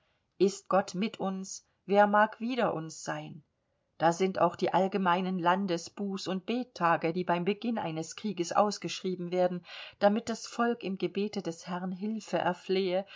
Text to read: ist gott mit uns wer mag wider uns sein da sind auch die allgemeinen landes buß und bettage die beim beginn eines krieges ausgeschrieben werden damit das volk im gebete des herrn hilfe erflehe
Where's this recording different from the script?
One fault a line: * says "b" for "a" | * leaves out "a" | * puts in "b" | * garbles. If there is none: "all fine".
all fine